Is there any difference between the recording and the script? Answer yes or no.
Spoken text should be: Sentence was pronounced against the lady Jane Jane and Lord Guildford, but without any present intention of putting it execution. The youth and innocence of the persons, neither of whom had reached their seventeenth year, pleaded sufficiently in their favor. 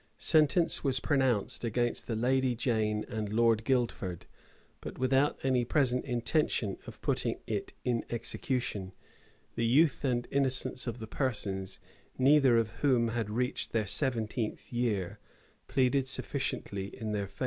yes